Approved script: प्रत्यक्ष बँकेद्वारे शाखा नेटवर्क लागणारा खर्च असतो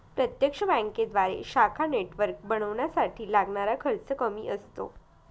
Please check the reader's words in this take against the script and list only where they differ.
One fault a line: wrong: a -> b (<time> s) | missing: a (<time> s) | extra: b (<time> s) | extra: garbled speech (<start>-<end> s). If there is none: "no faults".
extra: बनवण्यासाठी (2.4 s)
extra: कमी (4.2 s)